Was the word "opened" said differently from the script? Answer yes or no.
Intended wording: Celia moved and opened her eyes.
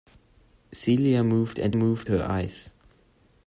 yes